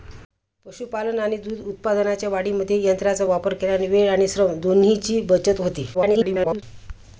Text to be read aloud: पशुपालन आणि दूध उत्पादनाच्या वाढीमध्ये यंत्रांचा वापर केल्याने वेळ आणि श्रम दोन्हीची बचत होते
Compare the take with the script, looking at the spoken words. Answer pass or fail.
fail